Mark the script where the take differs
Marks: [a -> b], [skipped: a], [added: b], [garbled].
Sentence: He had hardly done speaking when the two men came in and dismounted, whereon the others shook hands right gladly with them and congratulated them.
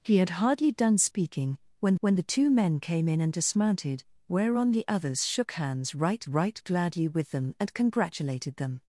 He had hardly done speaking when [added: when] the two men came in and dismounted, whereon the others shook hands right [added: right] gladly with them and congratulated them.